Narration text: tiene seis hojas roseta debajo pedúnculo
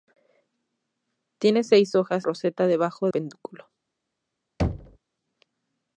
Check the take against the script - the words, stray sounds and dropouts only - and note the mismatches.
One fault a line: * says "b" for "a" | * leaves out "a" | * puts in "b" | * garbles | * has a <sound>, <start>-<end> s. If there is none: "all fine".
* has a thud, 4.6-5.0 s